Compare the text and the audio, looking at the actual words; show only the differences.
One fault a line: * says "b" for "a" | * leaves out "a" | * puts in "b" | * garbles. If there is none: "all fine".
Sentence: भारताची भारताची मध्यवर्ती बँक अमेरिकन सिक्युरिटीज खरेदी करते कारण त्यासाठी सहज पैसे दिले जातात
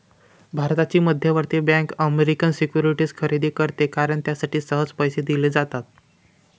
* leaves out "भारताची"